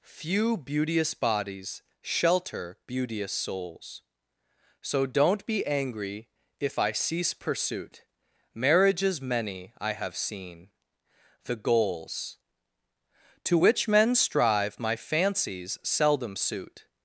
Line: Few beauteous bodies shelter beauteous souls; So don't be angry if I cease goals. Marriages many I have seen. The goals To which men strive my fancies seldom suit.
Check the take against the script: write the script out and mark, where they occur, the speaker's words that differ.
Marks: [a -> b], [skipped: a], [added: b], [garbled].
Few beauteous bodies shelter beauteous souls; So don't be angry if I cease [goals. -> pursuit] Marriages many I have seen. The goals To which men strive my fancies seldom suit.